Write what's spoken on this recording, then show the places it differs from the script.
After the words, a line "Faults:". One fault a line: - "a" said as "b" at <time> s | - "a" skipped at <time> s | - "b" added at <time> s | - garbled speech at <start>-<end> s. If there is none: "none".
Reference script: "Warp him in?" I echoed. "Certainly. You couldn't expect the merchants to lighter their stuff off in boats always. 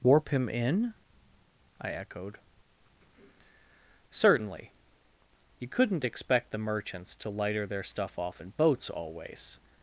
"Warp him in?" I echoed. "Certainly. You couldn't expect the merchants to lighter their stuff off in boats always.
Faults:
none